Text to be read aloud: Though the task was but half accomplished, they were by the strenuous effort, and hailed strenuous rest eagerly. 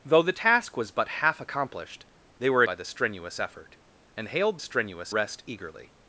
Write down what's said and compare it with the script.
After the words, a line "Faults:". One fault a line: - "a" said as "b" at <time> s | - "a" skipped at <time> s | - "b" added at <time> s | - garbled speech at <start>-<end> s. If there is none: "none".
Though the task was but half accomplished, they were by the strenuous effort, and hailed strenuous rest eagerly.
Faults:
none